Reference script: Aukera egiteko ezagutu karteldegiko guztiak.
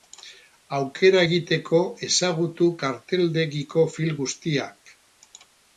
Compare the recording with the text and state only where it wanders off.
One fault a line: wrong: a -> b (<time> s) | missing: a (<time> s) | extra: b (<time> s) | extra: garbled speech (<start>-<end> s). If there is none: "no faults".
extra: film (4.0 s)